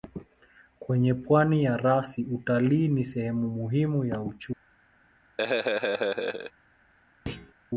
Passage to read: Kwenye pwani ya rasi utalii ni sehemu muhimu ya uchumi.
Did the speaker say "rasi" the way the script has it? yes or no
yes